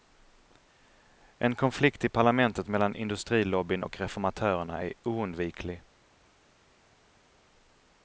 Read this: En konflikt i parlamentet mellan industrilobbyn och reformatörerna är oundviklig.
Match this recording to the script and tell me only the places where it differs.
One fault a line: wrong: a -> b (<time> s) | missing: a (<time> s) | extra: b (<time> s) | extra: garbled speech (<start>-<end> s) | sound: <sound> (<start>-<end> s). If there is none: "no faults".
no faults